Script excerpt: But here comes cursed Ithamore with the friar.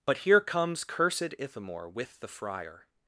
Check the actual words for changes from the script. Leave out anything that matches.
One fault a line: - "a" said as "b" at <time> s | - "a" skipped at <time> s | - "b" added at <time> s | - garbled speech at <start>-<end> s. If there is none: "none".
none